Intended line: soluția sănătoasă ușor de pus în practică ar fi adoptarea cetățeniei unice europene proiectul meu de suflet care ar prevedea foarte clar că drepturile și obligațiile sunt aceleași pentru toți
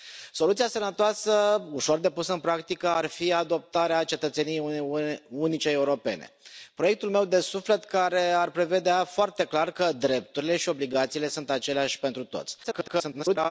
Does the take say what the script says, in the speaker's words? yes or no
no